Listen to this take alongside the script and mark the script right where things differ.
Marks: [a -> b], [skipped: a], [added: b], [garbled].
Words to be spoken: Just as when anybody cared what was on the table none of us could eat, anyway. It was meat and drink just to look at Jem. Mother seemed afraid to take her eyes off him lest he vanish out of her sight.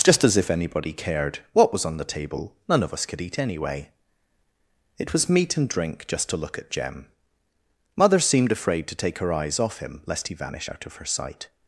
Just as [when -> if] anybody cared what was on the table none of us could eat, anyway. It was meat and drink just to look at Jem. Mother seemed afraid to take her eyes off him lest he vanish out of her sight.